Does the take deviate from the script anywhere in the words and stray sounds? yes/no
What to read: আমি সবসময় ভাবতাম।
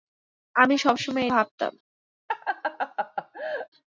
yes